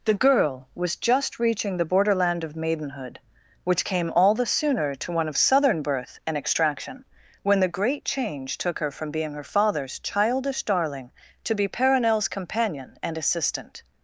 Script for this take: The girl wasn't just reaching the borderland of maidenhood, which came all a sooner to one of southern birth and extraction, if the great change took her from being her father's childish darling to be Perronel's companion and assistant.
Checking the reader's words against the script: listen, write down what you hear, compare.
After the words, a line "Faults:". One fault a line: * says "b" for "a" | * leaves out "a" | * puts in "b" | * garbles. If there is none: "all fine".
The girl was just reaching the borderland of maidenhood, which came all the sooner to one of southern birth and extraction, when the great change took her from being her father's childish darling to be Perronel's companion and assistant.
Faults:
* says "was" for "wasn't"
* says "the" for "a"
* says "when" for "if"